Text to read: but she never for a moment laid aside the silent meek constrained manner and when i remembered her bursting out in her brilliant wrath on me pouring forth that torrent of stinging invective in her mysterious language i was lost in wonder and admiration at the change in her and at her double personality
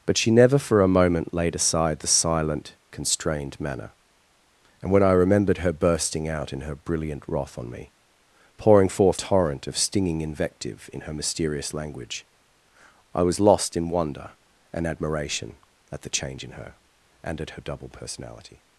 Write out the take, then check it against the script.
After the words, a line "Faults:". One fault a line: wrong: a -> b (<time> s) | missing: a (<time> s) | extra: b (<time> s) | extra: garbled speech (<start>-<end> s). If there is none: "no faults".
but she never for a moment laid aside the silent constrained manner and when i remembered her bursting out in her brilliant wrath on me pouring forth torrent of stinging invective in her mysterious language i was lost in wonder and admiration at the change in her and at her double personality
Faults:
missing: meek (2.8 s)
missing: that (9.2 s)